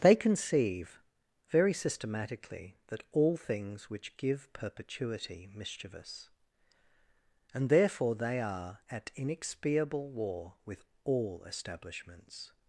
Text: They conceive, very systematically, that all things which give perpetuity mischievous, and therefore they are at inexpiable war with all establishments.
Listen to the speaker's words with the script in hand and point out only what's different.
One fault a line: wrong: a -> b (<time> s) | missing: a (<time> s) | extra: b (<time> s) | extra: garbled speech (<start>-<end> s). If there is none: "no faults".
no faults